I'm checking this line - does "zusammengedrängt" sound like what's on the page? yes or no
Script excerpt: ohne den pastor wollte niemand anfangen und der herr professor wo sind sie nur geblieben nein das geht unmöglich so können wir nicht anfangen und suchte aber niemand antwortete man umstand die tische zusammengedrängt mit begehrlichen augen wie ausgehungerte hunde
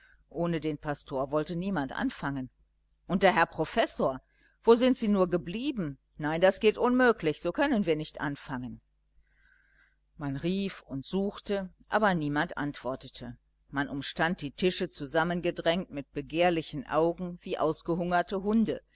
yes